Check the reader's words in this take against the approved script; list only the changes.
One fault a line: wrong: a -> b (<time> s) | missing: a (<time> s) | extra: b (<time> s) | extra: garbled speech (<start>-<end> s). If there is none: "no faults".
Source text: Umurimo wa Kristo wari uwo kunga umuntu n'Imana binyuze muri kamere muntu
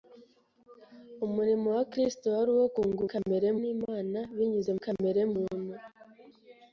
wrong: umuntu -> kamere (3.1 s)
missing: muri (4.7 s)